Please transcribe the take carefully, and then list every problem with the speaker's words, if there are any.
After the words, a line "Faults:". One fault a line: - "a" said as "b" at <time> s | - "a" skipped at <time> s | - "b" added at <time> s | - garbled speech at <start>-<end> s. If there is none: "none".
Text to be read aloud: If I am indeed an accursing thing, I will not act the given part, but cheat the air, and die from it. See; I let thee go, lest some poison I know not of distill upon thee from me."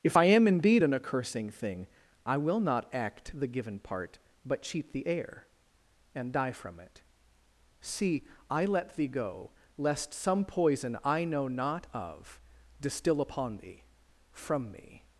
If I am indeed an accursing thing, I will not act the given part, but cheat the air, and die from it. See; I let thee go, lest some poison I know not of distill upon thee from me."
Faults:
none